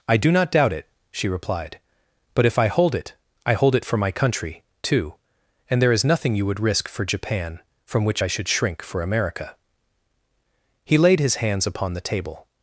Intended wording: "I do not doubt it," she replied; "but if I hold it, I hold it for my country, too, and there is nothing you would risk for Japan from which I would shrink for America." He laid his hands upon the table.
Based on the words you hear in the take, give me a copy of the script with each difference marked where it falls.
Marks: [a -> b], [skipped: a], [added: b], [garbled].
"I do not doubt it," she replied; "but if I hold it, I hold it for my country, too, and there is nothing you would risk for Japan from which I [would -> should] shrink for America." He laid his hands upon the table.